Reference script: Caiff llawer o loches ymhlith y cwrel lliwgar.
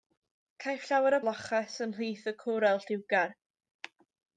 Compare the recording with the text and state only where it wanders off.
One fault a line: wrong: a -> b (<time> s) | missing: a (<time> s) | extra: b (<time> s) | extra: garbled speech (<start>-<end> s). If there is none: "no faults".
no faults